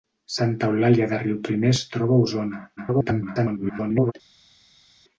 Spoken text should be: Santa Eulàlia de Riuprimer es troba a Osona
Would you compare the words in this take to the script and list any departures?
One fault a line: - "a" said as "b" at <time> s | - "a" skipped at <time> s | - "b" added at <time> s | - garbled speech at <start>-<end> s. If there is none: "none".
- garbled speech at 2.8-4.1 s